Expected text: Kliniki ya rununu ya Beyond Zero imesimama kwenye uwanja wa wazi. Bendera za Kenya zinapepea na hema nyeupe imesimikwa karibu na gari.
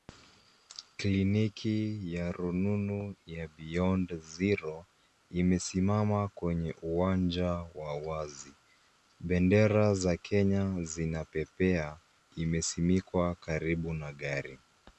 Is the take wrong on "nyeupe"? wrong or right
wrong